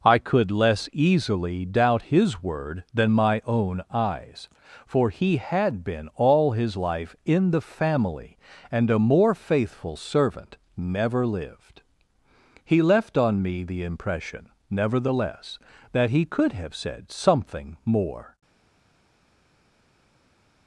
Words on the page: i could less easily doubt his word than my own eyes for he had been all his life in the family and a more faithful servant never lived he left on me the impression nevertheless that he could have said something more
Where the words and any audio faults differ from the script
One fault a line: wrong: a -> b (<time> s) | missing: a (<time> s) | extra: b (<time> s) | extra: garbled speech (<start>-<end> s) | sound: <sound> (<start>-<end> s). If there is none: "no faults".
no faults